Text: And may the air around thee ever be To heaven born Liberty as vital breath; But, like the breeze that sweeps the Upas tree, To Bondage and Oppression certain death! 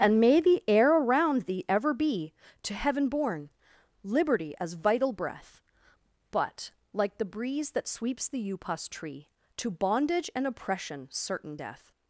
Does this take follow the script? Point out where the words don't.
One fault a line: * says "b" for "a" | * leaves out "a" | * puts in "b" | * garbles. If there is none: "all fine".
all fine